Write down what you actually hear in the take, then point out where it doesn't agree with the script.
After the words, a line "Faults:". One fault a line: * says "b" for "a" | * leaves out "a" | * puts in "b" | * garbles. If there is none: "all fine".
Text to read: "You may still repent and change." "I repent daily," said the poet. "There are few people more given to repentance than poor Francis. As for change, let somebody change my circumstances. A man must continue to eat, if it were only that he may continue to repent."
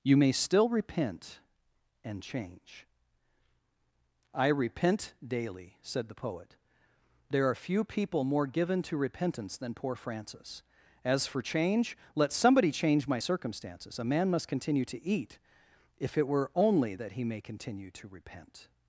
"You may still repent and change." "I repent daily," said the poet. "There are few people more given to repentance than poor Francis. As for change, let somebody change my circumstances. A man must continue to eat, if it were only that he may continue to repent."
Faults:
all fine